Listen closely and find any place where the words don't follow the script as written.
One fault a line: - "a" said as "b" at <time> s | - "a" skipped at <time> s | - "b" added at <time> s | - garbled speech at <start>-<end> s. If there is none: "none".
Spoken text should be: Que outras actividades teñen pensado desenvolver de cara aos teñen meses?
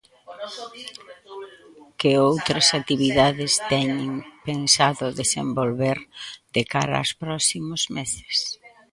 - "teñen" said as "próximos" at 7.2 s